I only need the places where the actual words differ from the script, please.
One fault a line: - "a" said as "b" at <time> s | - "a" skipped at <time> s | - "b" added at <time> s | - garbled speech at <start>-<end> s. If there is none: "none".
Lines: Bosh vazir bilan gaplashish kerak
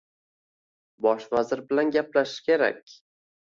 none